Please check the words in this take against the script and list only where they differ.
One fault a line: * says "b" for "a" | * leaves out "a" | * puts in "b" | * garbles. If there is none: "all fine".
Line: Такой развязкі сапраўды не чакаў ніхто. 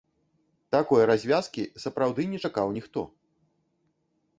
all fine